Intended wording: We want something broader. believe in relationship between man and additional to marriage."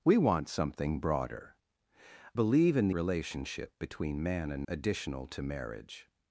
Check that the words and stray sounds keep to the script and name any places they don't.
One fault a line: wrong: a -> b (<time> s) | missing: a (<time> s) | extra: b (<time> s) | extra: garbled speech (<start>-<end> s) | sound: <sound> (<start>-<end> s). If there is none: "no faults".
no faults